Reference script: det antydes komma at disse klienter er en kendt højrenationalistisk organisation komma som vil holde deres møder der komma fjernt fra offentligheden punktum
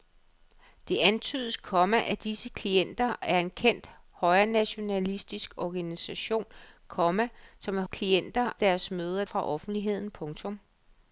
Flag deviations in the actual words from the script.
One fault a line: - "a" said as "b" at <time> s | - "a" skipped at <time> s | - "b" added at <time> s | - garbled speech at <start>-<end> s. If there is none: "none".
- "holde" said as "klienter" at 7.9 s
- "der komma fjernt" skipped at 9.2 s